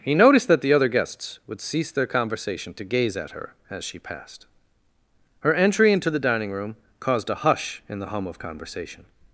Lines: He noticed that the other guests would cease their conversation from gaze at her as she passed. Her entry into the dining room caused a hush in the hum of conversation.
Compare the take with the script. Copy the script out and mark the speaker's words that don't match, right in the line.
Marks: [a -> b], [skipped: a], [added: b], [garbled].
He noticed that the other guests would cease their conversation [from -> to] gaze at her as she passed. Her entry into the dining room caused a hush in the hum of conversation.